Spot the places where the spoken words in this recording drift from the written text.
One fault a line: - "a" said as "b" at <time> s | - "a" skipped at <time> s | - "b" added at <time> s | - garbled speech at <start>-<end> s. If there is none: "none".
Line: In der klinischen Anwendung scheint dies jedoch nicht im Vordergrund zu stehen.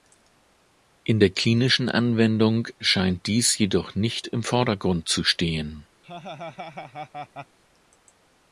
none